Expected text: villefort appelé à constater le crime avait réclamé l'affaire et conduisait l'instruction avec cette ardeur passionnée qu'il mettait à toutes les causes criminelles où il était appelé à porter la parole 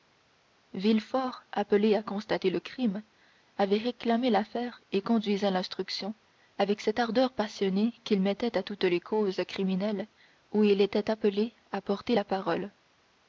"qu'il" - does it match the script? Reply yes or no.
yes